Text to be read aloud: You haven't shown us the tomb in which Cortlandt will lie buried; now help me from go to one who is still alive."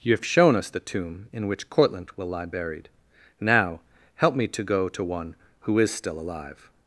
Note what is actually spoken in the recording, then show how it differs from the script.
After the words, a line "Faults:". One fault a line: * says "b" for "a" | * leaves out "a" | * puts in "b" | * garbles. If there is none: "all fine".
You have shown us the tomb in which Cortlandt will lie buried; now help me to go to one who is still alive."
Faults:
* says "have" for "haven't"
* says "to" for "from"